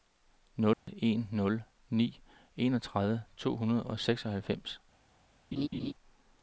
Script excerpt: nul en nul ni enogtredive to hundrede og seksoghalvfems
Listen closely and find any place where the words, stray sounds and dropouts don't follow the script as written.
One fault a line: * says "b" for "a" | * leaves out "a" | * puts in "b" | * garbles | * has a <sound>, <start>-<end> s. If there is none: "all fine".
* has a dropout, 0.7-0.9 s
* has a laugh, 5.5-5.9 s